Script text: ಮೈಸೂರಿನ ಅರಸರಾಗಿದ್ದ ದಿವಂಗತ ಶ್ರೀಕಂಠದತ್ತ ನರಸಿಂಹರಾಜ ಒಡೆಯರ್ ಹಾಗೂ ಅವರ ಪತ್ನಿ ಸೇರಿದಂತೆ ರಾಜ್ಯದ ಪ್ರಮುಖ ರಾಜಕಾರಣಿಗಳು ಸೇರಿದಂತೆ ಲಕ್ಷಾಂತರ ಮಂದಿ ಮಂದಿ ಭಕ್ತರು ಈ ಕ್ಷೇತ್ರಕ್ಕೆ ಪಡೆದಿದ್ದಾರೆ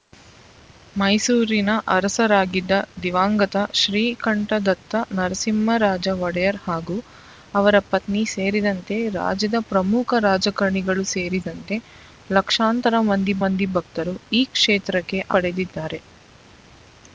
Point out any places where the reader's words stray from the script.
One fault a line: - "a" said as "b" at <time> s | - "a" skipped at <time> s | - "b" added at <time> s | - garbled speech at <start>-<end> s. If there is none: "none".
none